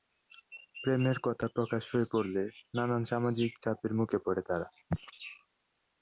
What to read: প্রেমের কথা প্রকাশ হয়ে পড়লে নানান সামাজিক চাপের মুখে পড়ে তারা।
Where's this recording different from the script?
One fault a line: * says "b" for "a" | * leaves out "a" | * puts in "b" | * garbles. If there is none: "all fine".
all fine